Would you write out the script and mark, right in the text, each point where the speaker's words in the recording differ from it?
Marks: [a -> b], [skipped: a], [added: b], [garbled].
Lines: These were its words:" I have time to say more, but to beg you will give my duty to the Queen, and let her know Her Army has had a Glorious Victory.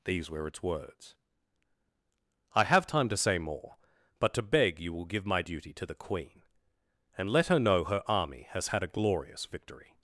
These were its words:" I have time to say more, but to beg you will give my duty to the Queen, and let her know Her Army has had a Glorious Victory.